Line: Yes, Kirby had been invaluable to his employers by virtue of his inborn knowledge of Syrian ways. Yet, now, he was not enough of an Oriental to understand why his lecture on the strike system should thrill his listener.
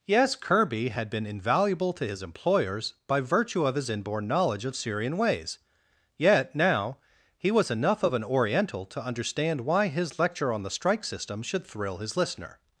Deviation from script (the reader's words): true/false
true